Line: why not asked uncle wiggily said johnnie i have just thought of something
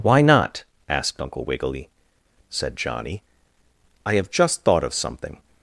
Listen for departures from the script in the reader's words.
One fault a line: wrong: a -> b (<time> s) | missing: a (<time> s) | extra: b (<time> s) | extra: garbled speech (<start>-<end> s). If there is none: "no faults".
no faults